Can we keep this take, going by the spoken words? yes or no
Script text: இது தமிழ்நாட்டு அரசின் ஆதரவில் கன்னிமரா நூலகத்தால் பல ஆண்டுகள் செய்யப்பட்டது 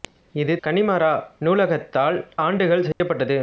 no